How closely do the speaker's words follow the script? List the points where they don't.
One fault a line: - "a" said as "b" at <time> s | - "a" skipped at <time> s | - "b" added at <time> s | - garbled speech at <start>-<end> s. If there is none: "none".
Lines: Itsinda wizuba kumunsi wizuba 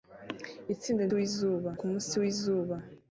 none